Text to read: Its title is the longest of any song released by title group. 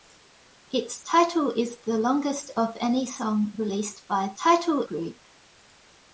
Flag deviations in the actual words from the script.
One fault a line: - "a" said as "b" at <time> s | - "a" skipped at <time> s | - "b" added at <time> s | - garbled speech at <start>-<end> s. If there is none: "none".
none